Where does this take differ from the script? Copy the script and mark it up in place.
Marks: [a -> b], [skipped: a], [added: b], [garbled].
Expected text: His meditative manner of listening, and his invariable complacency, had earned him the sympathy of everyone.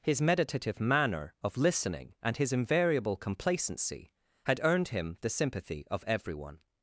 His meditative manner of listening, and his invariable complacency, had earned him the sympathy of everyone.